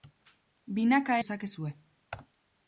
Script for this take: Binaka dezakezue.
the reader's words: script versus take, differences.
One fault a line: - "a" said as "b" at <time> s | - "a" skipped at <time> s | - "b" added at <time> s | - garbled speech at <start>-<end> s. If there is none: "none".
none